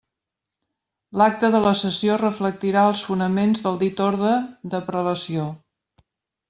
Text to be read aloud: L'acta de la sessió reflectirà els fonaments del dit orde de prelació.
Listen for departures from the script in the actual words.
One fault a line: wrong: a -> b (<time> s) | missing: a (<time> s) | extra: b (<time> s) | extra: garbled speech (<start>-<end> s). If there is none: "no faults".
no faults